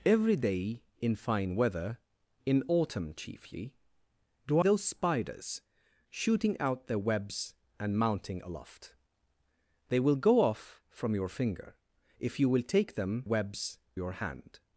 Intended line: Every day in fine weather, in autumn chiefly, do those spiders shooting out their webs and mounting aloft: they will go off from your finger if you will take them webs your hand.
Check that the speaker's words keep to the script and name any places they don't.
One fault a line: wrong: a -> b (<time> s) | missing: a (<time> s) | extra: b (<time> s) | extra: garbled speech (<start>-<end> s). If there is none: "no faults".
no faults